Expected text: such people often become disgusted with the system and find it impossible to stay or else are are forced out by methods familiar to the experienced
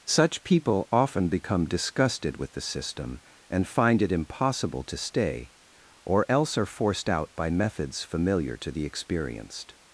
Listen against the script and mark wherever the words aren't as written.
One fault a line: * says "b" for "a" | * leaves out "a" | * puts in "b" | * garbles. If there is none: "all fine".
* leaves out "are"